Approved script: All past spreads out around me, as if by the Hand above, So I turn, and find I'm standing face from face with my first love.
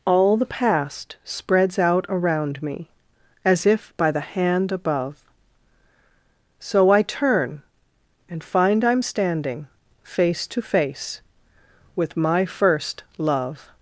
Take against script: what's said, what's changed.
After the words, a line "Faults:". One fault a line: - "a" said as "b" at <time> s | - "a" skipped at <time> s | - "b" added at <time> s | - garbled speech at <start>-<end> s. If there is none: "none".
All the past spreads out around me, as if by the Hand above, So I turn, and find I'm standing face to face with my first love.
Faults:
- "the" added at 0.3 s
- "from" said as "to" at 10.5 s